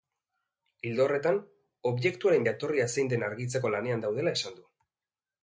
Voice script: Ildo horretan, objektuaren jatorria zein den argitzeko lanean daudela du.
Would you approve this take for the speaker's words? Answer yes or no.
no